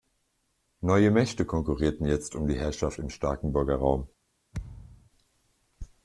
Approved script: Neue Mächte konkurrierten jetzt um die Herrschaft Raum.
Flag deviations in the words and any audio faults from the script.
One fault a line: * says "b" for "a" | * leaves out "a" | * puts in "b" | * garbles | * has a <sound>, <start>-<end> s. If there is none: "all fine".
* puts in "im Starkenburger"
* has a thud, 4.5-5.1 s